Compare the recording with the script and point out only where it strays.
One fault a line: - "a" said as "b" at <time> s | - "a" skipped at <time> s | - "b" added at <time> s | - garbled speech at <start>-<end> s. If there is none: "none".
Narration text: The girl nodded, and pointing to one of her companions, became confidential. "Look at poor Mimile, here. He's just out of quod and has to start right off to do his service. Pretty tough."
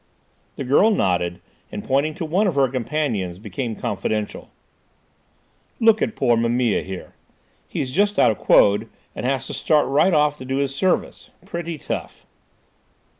none